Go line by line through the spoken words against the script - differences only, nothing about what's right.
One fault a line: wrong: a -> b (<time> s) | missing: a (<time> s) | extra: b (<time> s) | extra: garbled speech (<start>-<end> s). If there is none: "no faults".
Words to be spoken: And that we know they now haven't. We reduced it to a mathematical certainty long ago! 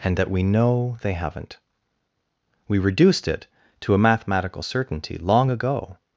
missing: now (1.1 s)